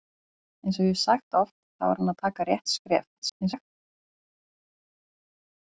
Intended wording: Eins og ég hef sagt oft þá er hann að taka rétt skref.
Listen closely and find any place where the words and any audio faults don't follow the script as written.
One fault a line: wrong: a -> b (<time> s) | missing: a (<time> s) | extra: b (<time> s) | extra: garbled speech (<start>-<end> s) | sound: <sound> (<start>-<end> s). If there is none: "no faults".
extra: garbled speech (3.2-3.7 s)